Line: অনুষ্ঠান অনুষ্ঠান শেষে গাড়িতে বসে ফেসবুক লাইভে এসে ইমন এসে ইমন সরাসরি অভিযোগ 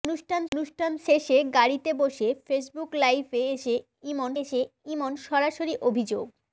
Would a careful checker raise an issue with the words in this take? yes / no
no